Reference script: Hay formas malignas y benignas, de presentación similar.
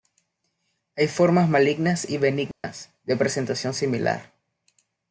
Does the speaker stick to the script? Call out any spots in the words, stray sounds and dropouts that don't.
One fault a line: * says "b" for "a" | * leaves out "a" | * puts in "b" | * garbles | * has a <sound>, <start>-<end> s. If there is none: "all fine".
* has a dropout, 2.5-2.6 s